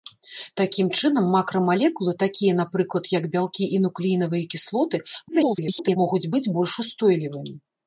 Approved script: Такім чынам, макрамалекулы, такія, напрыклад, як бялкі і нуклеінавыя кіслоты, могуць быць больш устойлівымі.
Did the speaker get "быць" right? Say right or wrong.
right